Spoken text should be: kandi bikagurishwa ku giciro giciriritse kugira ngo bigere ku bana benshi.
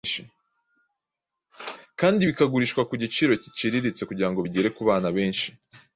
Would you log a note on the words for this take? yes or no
no